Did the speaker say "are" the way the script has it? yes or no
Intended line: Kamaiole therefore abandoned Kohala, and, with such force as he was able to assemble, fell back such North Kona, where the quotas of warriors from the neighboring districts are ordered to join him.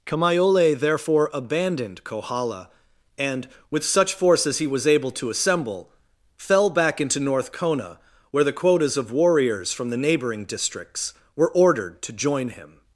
no